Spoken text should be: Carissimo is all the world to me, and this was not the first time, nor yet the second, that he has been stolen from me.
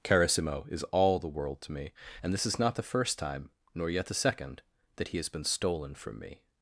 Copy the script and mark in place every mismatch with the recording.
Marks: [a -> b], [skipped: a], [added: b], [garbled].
Carissimo is all the world to me, and this [was -> is] not the first time, nor yet the second, that he has been stolen from me.